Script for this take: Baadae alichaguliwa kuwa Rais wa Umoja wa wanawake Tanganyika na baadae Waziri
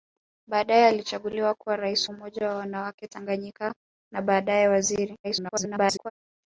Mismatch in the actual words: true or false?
true